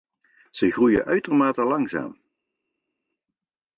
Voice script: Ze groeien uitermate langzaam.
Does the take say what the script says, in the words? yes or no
yes